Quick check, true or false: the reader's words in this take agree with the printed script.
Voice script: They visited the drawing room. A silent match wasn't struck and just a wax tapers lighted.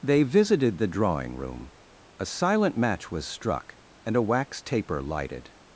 false